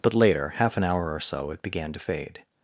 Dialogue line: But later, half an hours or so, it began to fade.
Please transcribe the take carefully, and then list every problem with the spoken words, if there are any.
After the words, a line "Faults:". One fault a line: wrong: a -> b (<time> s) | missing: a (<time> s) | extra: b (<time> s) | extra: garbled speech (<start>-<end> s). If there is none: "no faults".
But later, half an hour or so, it began to fade.
Faults:
wrong: hours -> hour (0.8 s)